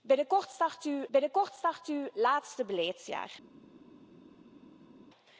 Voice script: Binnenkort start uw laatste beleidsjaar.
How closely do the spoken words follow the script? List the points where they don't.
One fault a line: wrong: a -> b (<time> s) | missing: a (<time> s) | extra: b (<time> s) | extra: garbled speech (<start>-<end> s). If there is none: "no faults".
extra: binnenkort start uw (1.1 s)